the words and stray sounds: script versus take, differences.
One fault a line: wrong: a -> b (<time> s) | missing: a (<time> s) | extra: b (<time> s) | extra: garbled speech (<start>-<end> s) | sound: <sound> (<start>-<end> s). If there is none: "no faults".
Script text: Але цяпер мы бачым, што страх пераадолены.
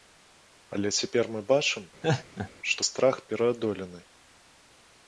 sound: laugh (2.0-2.5 s)